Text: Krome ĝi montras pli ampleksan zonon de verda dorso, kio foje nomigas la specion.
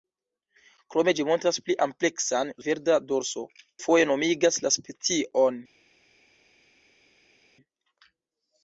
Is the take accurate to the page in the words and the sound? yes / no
no